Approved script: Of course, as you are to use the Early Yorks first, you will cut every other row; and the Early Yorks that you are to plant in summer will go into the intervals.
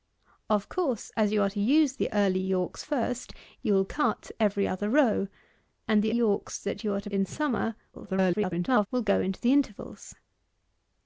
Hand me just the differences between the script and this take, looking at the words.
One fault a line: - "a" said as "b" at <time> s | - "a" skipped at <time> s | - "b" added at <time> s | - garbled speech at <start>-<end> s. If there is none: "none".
- "Early" skipped at 6.2 s
- "plant" skipped at 7.1 s
- garbled speech at 7.9-8.9 s